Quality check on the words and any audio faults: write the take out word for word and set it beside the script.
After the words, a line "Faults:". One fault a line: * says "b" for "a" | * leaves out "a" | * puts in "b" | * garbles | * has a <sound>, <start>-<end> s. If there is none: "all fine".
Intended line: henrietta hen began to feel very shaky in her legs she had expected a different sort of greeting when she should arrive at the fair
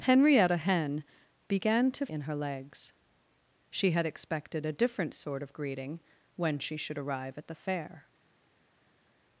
henrietta hen began to in her legs she had expected a different sort of greeting when she should arrive at the fair
Faults:
* leaves out "feel very shaky"